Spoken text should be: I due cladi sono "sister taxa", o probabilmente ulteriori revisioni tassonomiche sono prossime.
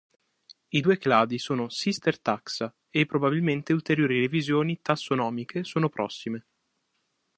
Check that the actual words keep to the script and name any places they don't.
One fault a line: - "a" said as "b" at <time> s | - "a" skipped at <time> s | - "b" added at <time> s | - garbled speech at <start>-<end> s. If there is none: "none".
- "o" said as "e" at 2.9 s